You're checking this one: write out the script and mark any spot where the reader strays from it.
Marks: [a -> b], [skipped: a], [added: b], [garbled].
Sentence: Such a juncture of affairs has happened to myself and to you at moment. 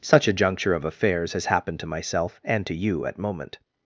Such a juncture of affairs has happened to myself and to you at moment.